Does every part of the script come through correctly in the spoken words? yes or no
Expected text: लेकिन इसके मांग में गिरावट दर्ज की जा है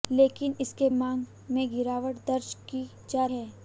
yes